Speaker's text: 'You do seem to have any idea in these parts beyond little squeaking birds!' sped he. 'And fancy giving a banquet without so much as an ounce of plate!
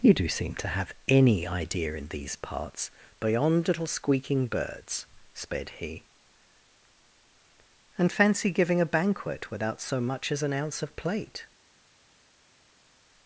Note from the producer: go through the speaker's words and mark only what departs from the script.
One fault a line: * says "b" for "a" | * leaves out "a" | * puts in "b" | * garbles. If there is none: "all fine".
all fine